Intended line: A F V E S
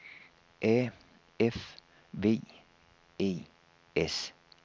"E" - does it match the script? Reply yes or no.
yes